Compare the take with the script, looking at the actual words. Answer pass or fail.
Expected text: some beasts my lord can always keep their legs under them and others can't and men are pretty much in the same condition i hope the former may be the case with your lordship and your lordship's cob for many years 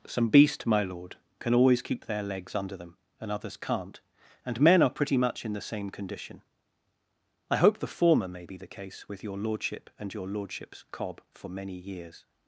fail